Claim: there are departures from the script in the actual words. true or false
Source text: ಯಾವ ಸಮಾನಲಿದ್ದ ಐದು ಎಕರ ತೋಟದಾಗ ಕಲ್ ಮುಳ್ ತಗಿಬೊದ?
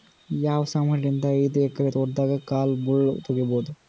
false